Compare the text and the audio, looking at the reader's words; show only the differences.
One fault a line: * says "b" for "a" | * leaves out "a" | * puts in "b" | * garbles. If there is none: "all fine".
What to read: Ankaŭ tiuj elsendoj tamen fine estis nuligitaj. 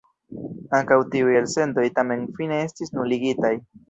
all fine